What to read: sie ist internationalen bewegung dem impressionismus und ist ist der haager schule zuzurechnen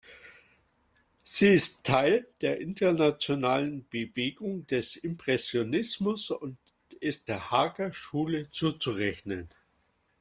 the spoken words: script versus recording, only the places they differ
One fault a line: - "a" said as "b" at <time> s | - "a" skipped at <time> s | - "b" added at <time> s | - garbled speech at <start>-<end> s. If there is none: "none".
- "teil der" added at 1.9 s
- "dem" said as "des" at 4.7 s
- "ist" skipped at 7.3 s